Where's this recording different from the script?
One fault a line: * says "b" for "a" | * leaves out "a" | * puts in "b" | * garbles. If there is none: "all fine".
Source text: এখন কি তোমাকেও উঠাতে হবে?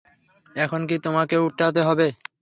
all fine